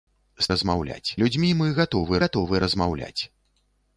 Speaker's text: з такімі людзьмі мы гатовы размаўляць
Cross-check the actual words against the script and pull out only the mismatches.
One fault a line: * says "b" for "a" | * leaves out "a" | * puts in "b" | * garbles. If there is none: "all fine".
* says "размаўляць" for "такімі"
* puts in "гатовы"